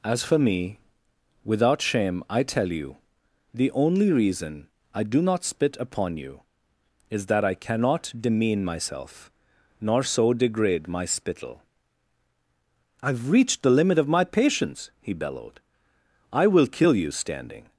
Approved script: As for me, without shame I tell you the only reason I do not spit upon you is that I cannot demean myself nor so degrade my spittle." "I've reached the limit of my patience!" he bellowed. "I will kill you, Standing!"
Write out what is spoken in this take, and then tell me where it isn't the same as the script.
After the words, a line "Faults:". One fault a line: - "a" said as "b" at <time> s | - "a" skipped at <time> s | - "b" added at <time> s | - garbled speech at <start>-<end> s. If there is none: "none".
As for me, without shame I tell you the only reason I do not spit upon you is that I cannot demean myself nor so degrade my spittle." "I've reached the limit of my patience!" he bellowed. "I will kill you, Standing!"
Faults:
none